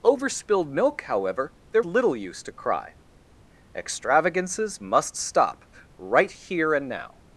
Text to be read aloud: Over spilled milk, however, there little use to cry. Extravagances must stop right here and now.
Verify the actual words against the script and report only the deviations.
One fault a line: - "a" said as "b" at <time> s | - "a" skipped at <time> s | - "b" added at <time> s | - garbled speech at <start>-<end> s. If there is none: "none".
none